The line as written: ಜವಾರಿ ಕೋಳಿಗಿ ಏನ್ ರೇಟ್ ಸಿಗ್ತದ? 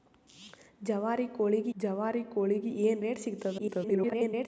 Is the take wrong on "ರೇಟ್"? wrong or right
right